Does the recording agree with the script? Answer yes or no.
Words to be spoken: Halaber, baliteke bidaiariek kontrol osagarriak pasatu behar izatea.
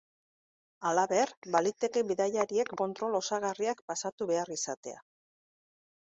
yes